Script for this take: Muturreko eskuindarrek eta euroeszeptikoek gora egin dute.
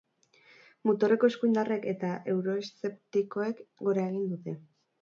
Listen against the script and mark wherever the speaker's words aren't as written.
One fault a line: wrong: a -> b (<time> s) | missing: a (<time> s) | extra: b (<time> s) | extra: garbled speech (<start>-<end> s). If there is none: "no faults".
no faults